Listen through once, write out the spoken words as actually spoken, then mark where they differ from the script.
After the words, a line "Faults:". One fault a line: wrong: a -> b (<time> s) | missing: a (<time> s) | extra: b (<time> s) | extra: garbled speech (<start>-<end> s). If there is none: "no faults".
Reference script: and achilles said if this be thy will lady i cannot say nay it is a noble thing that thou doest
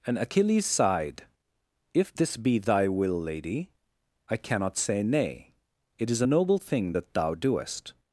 and achilles sighed if this be thy will lady i cannot say nay it is a noble thing that thou doest
Faults:
wrong: said -> sighed (0.7 s)